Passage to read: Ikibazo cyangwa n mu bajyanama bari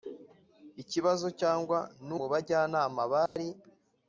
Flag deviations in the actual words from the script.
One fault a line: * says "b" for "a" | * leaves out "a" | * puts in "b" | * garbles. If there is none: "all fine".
all fine